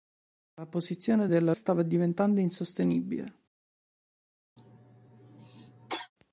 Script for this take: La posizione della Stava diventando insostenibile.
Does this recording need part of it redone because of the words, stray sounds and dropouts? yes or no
yes